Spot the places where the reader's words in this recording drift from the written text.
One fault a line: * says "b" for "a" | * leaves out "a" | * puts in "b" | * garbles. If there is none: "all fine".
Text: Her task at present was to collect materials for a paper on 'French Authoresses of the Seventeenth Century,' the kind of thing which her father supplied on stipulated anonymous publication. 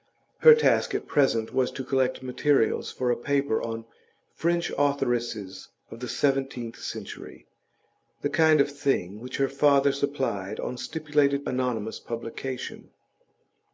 all fine